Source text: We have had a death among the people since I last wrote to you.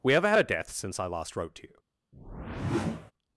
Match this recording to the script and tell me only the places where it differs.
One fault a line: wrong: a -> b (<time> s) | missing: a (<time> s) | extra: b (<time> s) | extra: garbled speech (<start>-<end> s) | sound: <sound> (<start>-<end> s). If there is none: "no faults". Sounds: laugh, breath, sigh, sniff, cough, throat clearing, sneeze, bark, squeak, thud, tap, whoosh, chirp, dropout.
missing: among the people (0.7 s)
sound: whoosh (2.1-3.1 s)